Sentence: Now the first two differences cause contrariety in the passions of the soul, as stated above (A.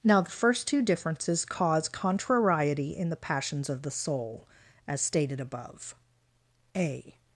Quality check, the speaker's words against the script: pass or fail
pass